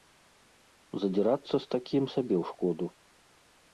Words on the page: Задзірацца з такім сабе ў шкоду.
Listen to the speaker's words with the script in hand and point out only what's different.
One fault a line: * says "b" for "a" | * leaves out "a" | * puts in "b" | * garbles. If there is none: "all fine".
all fine